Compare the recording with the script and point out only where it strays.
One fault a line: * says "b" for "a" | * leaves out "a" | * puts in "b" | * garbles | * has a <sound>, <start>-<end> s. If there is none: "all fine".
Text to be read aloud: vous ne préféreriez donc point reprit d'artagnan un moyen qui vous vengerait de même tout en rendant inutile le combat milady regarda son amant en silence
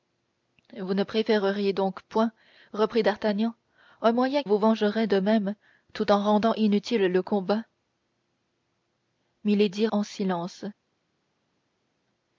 * leaves out "qui"
* leaves out "regarda son amant"